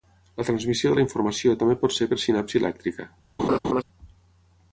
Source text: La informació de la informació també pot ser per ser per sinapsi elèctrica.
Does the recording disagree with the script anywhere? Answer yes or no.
yes